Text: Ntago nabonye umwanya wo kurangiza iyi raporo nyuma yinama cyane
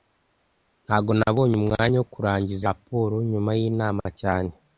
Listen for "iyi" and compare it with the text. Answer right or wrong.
wrong